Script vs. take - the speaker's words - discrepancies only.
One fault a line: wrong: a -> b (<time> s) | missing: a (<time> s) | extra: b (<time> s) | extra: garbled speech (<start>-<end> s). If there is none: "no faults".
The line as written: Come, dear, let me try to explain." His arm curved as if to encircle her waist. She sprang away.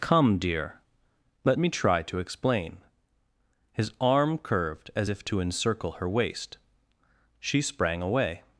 no faults